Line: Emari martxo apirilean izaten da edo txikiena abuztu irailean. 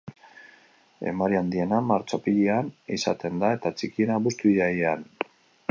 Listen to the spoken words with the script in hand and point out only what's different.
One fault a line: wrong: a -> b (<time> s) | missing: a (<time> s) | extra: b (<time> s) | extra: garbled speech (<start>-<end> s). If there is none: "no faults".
extra: handiena (1.4 s)
wrong: edo -> eta (3.6 s)